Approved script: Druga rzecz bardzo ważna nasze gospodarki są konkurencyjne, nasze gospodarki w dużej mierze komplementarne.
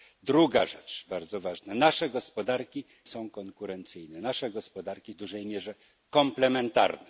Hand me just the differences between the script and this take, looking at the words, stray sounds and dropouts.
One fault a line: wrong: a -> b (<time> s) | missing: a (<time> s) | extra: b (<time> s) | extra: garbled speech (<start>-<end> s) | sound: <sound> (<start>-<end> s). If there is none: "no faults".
no faults